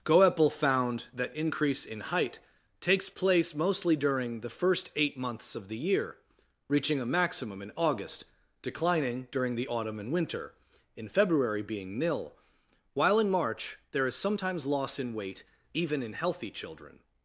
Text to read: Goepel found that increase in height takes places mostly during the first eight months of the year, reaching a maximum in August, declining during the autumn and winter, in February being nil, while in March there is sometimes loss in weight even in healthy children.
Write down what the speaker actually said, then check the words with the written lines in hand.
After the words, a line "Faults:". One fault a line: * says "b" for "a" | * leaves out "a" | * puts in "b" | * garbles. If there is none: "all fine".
Goepel found that increase in height takes place mostly during the first eight months of the year, reaching a maximum in August, declining during the autumn and winter, in February being nil, while in March there is sometimes loss in weight even in healthy children.
Faults:
* says "place" for "places"